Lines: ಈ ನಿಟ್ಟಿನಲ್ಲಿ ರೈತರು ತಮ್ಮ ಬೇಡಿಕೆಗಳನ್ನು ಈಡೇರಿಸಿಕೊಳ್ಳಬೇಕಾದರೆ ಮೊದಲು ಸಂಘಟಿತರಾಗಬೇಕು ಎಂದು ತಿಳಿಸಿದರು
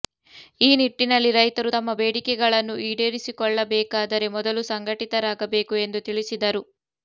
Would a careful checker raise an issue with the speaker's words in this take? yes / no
no